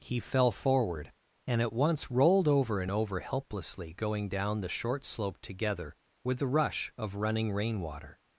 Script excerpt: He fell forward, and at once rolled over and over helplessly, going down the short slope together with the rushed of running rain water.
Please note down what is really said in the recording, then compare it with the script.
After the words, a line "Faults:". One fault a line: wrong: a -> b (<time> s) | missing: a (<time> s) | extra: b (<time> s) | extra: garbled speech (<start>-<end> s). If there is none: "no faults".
He fell forward, and at once rolled over and over helplessly, going down the short slope together with the rush of running rain water.
Faults:
wrong: rushed -> rush (6.5 s)